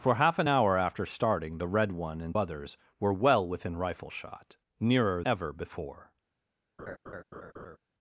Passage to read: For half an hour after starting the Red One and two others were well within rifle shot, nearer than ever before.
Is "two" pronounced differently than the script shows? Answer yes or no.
yes